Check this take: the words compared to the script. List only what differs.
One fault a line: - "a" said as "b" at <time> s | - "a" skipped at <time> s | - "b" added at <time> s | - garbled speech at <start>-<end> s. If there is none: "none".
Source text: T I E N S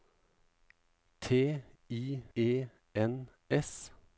none